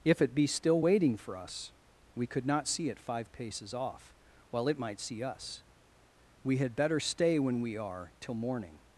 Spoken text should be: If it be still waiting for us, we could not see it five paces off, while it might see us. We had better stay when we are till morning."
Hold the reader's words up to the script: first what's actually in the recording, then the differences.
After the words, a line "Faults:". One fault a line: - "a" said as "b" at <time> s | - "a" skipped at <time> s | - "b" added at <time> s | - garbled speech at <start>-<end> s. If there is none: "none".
If it be still waiting for us, we could not see it five paces off, while it might see us. We had better stay when we are till morning."
Faults:
none